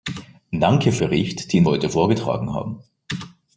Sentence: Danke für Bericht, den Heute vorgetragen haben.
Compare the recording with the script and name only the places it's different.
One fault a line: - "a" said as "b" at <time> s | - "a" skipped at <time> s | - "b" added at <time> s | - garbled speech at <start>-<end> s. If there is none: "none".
none